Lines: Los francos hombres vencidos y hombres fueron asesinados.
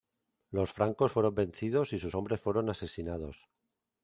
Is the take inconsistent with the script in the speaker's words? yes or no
yes